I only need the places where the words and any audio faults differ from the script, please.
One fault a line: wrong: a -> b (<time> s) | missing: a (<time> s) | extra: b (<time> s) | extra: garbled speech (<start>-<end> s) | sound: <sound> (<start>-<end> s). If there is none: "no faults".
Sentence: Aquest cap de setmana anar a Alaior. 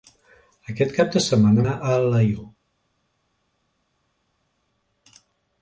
no faults